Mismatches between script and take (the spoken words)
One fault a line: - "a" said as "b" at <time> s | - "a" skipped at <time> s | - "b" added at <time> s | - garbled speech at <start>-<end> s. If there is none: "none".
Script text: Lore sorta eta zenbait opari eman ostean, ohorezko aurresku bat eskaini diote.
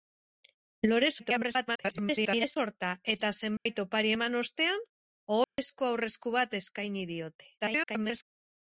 - garbled speech at 1.2-2.6 s
- garbled speech at 7.6-8.2 s